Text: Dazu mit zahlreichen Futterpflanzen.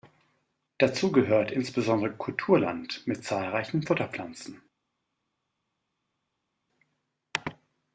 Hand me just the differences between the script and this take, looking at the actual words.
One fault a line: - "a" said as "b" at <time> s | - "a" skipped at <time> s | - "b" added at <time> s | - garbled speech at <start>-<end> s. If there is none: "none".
- "gehört insbesondere Kulturland" added at 1.1 s